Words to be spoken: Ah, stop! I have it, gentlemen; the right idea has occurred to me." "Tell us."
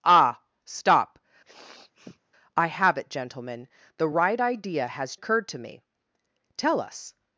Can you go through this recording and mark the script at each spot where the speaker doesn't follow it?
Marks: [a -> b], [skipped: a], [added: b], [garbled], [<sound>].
Ah, stop! [sniff] I have it, gentlemen; the right idea has occurred to me." "Tell us."